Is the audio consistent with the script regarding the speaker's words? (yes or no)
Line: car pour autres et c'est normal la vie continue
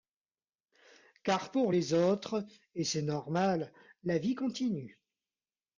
no